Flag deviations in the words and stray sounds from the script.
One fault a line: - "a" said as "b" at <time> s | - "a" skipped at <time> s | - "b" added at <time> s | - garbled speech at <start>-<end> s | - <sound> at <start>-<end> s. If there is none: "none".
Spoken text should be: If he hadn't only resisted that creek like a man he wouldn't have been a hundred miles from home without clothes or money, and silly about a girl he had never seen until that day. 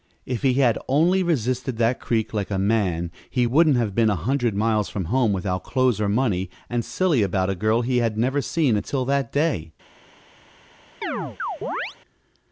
- "hadn't" said as "had" at 0.6 s
- chirp at 11.0-12.0 s